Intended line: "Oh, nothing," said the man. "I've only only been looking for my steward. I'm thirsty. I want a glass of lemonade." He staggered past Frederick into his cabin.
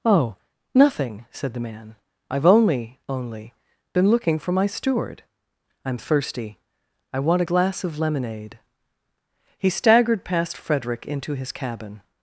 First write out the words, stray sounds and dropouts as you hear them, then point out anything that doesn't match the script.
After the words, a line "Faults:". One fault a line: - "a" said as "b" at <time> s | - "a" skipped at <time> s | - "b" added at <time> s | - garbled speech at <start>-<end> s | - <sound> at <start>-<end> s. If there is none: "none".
"Oh, nothing," said the man. "I've only only been looking for my steward. I'm thirsty. I want a glass of lemonade." He staggered past Frederick into his cabin.
Faults:
none